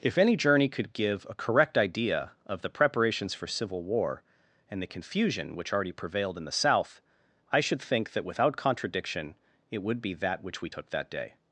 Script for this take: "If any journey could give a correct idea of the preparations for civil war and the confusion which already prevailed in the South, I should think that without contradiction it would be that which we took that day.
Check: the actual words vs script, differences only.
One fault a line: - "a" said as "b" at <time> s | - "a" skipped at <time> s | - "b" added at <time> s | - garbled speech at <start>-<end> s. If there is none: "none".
none